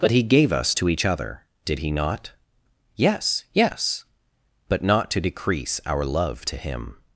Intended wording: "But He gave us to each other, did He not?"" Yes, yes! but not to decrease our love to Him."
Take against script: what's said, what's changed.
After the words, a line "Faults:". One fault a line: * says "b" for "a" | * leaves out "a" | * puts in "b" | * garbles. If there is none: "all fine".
"But He gave us to each other, did He not?"" Yes, yes! but not to decrease our love to Him."
Faults:
all fine